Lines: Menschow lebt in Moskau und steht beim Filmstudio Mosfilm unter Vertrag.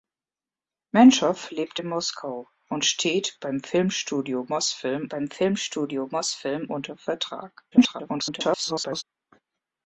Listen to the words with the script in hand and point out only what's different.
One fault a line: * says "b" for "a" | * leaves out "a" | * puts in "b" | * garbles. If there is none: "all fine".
* puts in "beim Filmstudio Mosfilm"
* garbles